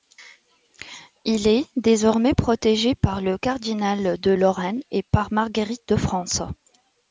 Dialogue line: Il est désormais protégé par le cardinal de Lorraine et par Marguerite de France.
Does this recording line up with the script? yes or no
yes